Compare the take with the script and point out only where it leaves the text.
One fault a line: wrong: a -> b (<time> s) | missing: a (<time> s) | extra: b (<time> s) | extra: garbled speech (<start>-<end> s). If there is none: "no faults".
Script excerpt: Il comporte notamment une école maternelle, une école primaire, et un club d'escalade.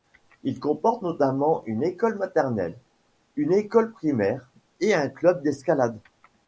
no faults